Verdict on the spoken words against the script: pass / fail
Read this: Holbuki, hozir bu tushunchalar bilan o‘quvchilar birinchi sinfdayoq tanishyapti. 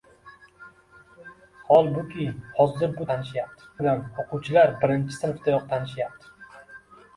fail